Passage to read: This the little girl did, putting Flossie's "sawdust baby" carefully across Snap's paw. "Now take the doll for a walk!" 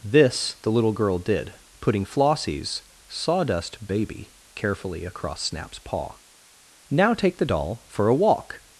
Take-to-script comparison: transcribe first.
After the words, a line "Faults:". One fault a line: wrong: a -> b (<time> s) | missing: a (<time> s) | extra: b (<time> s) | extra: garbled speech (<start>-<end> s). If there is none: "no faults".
This the little girl did, putting Flossie's "sawdust baby" carefully across Snap's paw. "Now take the doll for a walk!"
Faults:
no faults